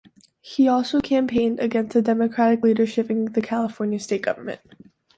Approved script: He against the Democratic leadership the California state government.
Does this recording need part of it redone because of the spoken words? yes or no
yes